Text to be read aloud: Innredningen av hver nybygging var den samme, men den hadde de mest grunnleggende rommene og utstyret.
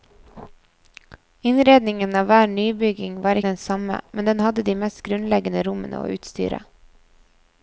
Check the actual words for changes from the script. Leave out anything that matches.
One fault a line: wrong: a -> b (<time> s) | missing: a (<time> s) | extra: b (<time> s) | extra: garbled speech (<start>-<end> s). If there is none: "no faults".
no faults